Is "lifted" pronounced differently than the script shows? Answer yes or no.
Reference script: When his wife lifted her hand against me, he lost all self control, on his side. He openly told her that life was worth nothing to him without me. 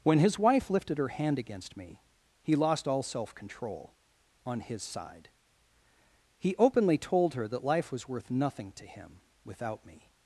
no